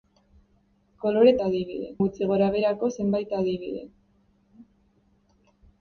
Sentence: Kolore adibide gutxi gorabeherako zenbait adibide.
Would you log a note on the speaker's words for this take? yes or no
no